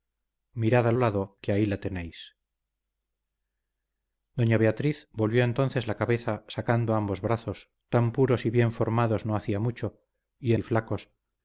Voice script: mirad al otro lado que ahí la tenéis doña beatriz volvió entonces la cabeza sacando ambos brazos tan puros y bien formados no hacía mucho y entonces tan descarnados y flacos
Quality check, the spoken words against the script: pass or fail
fail